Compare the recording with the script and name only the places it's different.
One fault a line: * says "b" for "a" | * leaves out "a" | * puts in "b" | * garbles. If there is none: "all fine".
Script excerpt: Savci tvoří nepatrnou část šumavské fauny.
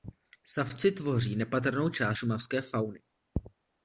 all fine